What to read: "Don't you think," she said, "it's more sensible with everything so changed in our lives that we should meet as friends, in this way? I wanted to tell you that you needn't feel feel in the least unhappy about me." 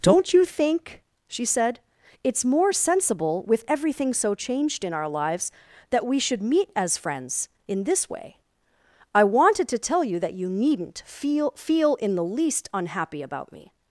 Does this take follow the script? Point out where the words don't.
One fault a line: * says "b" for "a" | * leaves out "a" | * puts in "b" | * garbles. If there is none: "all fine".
all fine